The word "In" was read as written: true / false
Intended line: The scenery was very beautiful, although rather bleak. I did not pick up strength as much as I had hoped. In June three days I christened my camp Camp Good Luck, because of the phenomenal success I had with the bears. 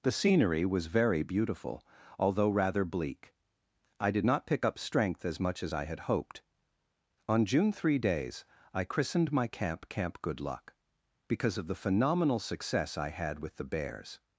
false